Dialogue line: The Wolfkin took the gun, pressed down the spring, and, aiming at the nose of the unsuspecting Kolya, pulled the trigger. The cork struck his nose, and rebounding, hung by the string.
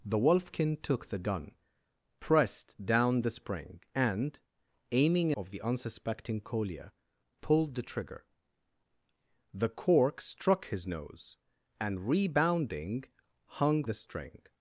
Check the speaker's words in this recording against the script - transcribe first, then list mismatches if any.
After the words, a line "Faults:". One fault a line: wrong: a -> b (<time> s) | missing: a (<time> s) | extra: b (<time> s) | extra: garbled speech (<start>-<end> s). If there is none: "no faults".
The Wolfkin took the gun, pressed down the spring, and, aiming of the unsuspecting Kolya, pulled the trigger. The cork struck his nose, and rebounding, hung the string.
Faults:
missing: at the nose (5.3 s)
missing: by (13.8 s)